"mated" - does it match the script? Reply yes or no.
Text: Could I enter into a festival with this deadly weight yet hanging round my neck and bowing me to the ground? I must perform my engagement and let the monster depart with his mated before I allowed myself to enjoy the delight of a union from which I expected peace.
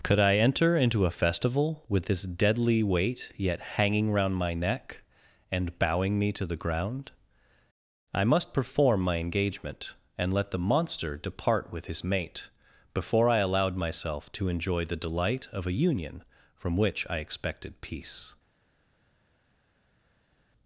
no